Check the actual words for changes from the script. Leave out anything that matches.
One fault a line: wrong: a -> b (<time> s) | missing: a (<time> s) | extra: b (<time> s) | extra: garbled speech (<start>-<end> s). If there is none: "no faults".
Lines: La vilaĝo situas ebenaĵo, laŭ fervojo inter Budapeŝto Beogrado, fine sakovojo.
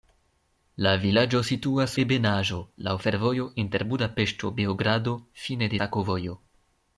no faults